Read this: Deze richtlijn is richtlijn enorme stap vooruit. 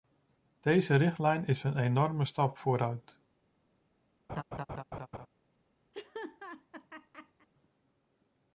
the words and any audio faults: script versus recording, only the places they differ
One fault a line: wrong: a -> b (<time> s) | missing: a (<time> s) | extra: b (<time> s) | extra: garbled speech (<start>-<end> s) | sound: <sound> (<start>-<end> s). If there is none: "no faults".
wrong: richtlijn -> een (1.6 s)
sound: laugh (4.3-5.3 s)
sound: laugh (5.9-7.5 s)